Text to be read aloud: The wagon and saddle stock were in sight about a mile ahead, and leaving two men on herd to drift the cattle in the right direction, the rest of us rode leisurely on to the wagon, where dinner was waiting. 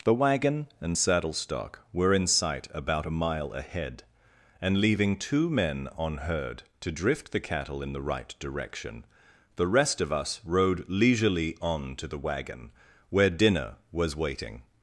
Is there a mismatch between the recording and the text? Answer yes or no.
no